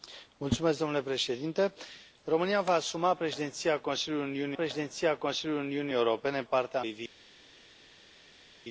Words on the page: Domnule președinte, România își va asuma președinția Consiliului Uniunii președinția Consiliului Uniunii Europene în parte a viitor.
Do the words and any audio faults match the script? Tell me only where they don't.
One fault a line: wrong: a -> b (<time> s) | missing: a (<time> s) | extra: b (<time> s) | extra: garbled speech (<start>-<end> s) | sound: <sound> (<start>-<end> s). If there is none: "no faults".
no faults